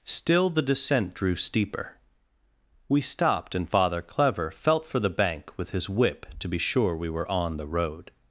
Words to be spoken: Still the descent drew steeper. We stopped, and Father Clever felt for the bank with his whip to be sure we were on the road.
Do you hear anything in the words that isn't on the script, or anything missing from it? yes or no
no